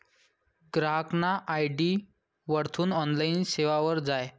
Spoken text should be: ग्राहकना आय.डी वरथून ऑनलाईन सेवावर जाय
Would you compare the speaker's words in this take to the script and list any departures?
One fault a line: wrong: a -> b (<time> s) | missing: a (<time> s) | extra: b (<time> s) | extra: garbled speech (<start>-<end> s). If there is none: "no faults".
no faults